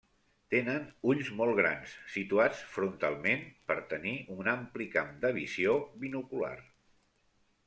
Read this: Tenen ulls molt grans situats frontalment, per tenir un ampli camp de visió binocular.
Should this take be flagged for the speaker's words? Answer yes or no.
no